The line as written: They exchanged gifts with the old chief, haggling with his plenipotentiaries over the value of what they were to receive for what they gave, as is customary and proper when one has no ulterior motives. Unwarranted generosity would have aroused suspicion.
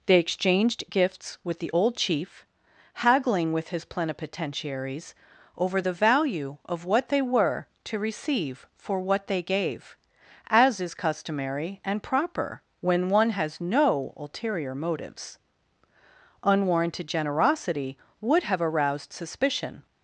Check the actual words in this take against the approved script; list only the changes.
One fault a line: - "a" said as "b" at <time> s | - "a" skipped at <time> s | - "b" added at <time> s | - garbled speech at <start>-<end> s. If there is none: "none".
none